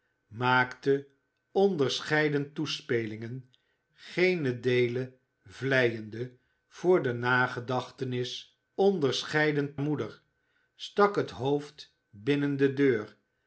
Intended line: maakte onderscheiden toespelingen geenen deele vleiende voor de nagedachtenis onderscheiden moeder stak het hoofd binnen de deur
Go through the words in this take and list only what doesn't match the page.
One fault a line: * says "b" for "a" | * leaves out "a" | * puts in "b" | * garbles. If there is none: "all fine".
all fine